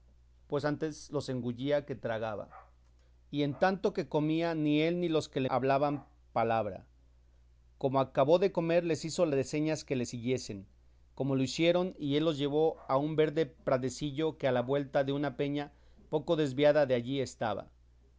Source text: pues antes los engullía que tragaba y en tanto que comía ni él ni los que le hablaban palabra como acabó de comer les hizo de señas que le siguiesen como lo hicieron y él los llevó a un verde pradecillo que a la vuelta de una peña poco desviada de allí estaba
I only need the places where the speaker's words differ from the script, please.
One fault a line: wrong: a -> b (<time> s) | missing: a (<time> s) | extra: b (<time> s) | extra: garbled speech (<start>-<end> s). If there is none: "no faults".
no faults